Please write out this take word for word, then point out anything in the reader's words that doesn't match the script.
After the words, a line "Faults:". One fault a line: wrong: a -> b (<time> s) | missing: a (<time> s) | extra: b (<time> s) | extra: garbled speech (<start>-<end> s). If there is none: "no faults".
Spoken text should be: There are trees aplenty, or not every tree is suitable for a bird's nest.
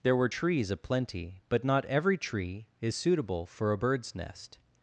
There were trees aplenty, but not every tree is suitable for a bird's nest.
Faults:
wrong: are -> were (0.1 s)
wrong: or -> but (1.5 s)